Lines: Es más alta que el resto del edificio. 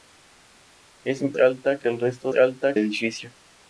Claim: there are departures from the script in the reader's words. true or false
true